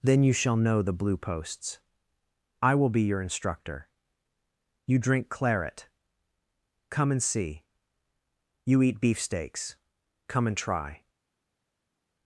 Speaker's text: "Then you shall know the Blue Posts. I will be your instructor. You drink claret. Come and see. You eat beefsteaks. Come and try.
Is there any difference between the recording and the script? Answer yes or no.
no